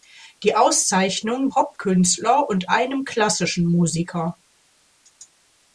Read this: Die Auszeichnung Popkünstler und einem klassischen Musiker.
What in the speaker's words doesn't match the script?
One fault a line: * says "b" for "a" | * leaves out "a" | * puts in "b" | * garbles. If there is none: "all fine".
all fine